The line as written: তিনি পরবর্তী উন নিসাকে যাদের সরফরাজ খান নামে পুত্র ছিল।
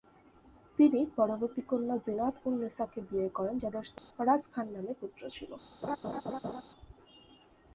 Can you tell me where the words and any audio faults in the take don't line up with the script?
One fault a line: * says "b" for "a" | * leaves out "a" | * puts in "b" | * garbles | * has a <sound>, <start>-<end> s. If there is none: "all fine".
* puts in "কন্যা জিনাত"
* puts in "বিয়ে করেন"
* has a dropout, 4.0-4.1 s
* has a laugh, 5.8-6.6 s